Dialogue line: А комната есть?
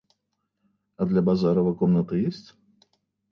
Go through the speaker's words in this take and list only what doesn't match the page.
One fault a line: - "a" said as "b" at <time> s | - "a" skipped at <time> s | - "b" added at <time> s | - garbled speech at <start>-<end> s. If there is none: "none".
- "для Базарова" added at 1.1 s